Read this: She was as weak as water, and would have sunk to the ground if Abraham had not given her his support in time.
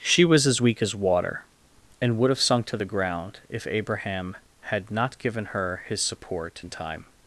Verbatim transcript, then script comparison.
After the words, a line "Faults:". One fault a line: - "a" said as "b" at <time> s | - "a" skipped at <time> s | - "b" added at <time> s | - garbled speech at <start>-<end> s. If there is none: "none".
She was as weak as water, and would have sunk to the ground if Abraham had not given her his support in time.
Faults:
none